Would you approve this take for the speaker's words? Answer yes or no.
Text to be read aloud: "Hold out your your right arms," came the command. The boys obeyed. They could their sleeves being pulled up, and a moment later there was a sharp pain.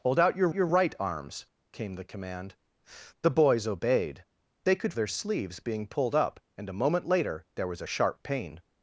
yes